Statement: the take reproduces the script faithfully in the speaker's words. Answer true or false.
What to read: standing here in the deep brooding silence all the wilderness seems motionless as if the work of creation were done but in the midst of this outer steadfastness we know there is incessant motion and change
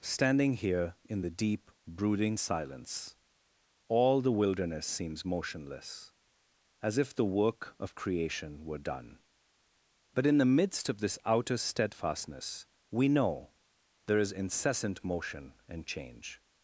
true